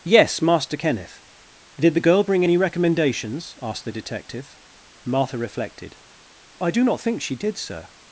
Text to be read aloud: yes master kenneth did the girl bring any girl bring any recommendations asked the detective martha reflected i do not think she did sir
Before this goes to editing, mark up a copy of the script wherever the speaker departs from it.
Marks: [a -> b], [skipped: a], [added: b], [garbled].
yes master kenneth did the girl bring any [skipped: girl bring any] recommendations asked the detective martha reflected i do not think she did sir